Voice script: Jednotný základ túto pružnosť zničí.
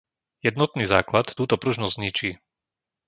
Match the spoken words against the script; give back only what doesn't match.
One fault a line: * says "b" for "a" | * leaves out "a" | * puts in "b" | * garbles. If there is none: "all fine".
all fine